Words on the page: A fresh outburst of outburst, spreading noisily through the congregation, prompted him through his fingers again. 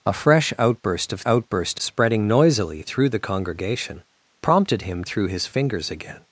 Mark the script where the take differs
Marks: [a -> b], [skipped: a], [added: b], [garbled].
A fresh outburst of outburst, spreading noisily through the congregation, prompted him through his fingers again.